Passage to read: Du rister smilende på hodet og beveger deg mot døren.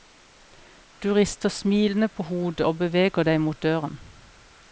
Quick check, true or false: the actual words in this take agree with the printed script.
true